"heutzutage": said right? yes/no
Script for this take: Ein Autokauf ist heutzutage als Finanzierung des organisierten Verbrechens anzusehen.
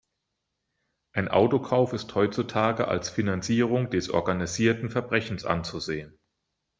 yes